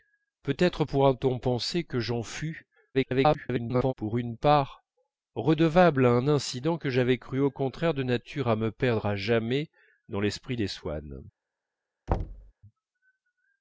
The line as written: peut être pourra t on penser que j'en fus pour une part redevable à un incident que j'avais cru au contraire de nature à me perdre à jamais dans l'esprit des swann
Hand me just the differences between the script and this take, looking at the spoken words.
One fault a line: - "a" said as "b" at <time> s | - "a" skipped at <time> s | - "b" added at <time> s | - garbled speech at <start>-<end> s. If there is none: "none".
- garbled speech at 2.9-3.9 s